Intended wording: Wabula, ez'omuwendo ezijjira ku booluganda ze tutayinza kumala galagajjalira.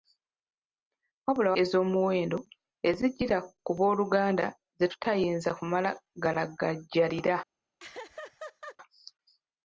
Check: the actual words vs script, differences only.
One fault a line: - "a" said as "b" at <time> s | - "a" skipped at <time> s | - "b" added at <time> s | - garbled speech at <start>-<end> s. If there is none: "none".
none